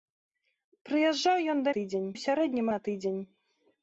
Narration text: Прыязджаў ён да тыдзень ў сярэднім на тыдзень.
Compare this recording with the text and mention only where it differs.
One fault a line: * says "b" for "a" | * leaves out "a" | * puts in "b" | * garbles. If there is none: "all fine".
all fine